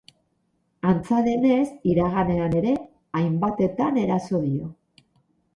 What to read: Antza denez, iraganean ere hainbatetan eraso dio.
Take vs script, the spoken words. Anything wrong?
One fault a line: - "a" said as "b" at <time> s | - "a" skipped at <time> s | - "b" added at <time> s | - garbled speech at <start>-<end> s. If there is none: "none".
none